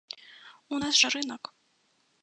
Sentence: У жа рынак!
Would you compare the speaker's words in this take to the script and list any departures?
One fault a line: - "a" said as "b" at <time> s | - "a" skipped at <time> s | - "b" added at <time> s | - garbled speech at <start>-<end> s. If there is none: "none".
- "нас" added at 0.8 s